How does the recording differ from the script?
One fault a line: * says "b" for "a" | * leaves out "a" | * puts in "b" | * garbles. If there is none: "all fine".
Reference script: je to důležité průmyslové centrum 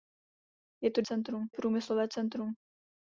* says "centrum" for "důležité"